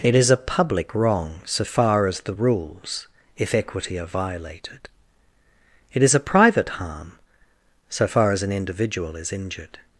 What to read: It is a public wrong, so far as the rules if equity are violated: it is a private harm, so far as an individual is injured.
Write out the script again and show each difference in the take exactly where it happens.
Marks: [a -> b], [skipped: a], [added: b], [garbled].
It is a public wrong, so far as the rules if equity are violated: it is a private harm, so far as an individual is injured.